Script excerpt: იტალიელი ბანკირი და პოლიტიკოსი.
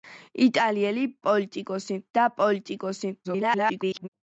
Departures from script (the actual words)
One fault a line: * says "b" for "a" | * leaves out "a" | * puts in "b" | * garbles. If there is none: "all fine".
* says "პოლიტიკოსი" for "ბანკირი"
* garbles